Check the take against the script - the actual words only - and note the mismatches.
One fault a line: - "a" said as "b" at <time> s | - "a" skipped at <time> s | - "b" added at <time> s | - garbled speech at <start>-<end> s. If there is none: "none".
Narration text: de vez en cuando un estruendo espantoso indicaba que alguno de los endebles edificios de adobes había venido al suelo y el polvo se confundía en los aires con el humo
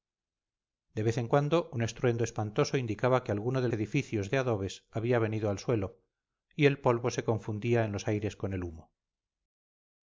- "los endebles" skipped at 3.7 s